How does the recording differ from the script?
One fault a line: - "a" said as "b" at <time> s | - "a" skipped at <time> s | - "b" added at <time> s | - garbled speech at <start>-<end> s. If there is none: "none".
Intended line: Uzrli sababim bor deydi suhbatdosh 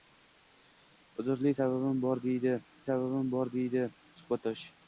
- "sababim bor deydi" added at 2.9 s